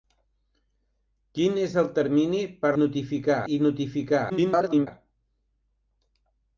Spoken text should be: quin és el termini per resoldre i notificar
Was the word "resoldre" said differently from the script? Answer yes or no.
yes